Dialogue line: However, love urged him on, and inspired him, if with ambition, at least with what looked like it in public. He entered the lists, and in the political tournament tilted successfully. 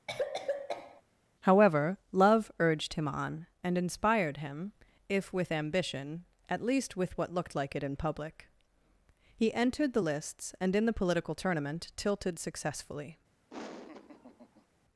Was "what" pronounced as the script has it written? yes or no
yes